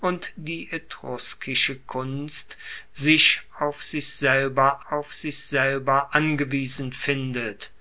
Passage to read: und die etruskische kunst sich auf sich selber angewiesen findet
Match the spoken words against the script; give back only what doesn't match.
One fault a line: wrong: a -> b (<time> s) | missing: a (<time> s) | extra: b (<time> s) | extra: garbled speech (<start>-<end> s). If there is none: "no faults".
extra: auf sich selber (4.9 s)